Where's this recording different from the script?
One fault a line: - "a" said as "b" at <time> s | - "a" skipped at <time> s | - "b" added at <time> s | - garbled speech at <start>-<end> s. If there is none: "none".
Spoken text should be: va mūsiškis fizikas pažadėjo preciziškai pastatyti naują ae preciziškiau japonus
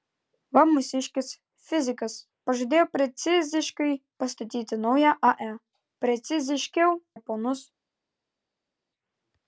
none